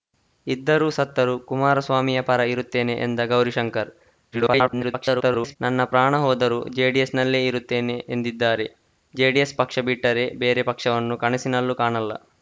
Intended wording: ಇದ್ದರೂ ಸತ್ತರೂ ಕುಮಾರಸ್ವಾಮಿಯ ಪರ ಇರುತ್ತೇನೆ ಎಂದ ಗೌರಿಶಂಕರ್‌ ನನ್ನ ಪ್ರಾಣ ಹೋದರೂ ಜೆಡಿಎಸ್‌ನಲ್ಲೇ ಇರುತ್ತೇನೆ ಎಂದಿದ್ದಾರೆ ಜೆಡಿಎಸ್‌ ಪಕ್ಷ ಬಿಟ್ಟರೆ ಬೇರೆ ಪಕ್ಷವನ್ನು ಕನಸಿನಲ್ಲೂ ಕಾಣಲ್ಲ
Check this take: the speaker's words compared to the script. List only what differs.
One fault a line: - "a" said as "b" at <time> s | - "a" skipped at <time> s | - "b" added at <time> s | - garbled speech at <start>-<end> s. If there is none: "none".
- garbled speech at 4.3-5.6 s